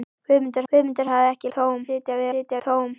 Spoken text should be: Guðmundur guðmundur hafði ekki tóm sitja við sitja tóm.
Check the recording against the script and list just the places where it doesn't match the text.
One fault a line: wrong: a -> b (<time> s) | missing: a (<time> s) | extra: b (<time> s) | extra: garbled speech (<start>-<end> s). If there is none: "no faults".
no faults